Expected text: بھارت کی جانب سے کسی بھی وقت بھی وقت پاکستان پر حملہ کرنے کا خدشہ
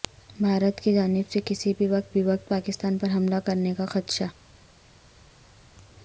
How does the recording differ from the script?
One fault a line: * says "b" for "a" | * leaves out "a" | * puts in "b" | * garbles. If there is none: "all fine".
all fine